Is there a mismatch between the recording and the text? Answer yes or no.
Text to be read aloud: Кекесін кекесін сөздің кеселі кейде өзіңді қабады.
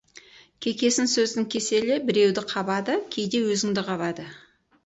yes